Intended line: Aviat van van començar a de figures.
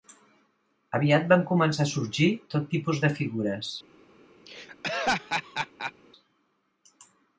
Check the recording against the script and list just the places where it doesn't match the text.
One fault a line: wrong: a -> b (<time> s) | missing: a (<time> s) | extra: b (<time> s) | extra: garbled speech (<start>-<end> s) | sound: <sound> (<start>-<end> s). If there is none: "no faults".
missing: van (1.4 s)
extra: sorgir tot tipus (1.9 s)
sound: laugh (4.5-5.9 s)